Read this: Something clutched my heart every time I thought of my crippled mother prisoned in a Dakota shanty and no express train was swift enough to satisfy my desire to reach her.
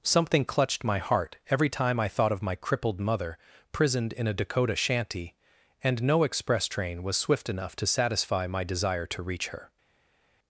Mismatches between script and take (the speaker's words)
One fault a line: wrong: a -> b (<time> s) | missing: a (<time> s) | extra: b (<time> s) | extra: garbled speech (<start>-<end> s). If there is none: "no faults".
no faults